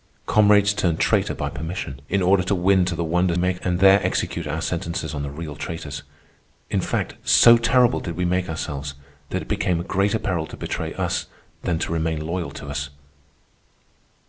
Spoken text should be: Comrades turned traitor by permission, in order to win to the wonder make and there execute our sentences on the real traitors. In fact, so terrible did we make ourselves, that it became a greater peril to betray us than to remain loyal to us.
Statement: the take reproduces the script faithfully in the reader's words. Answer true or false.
true